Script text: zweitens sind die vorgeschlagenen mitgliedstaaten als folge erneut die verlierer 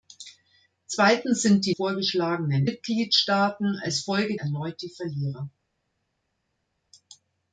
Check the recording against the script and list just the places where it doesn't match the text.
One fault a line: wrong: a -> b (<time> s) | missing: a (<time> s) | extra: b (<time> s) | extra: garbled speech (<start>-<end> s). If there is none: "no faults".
no faults